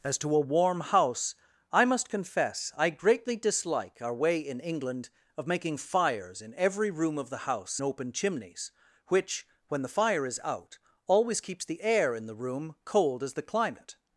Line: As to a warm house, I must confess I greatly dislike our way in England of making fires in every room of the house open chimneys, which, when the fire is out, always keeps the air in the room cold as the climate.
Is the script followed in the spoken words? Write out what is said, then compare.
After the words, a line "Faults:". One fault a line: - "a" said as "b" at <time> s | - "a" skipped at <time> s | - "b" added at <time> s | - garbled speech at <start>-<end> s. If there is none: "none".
As to a warm house, I must confess I greatly dislike our way in England of making fires in every room of the house open chimneys, which, when the fire is out, always keeps the air in the room cold as the climate.
Faults:
none